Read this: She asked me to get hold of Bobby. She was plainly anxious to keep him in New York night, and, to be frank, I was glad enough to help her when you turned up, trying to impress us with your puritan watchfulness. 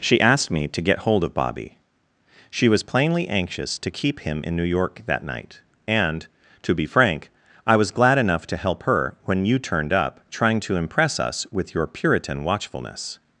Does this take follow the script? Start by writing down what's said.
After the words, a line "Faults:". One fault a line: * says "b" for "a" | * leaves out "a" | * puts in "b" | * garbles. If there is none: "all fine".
She asked me to get hold of Bobby. She was plainly anxious to keep him in New York that night, and, to be frank, I was glad enough to help her when you turned up, trying to impress us with your puritan watchfulness.
Faults:
* puts in "that"